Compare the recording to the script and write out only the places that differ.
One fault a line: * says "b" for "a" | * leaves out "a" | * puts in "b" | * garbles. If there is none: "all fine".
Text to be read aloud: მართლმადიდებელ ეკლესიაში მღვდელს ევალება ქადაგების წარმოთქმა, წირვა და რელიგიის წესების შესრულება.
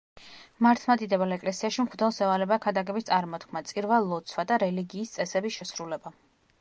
* puts in "ლოცვა"